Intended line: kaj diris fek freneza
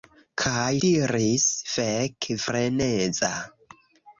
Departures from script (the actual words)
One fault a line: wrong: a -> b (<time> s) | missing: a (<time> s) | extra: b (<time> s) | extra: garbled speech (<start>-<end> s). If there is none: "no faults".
no faults